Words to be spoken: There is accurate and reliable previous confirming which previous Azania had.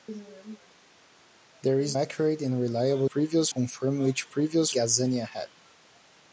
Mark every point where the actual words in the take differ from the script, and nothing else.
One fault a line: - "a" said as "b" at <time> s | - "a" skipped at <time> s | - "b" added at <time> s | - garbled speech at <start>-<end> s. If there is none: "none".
none